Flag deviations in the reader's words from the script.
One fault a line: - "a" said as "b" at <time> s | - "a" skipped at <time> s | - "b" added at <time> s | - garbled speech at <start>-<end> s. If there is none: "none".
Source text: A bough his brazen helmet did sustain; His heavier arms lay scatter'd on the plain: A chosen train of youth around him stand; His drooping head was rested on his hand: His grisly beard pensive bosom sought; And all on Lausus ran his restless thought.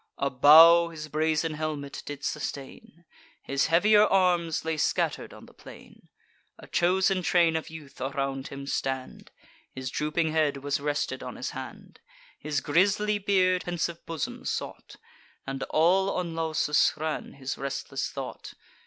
none